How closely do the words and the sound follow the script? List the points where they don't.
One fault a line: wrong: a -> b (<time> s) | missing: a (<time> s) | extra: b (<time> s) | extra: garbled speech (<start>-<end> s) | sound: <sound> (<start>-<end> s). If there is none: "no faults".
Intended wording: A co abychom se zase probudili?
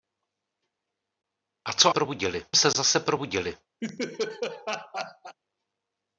wrong: abychom -> probudili (1.9 s)
sound: laugh (3.8-5.4 s)